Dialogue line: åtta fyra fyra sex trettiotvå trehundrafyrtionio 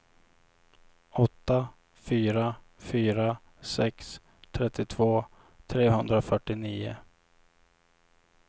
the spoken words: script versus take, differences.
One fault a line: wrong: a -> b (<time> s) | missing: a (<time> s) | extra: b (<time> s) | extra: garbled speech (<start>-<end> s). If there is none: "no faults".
no faults